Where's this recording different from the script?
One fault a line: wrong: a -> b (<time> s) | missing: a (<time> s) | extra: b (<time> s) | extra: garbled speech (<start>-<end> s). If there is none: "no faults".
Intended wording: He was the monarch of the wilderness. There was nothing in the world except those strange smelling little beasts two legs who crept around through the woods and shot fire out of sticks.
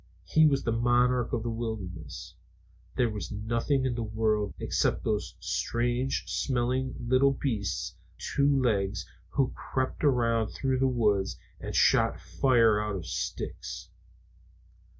no faults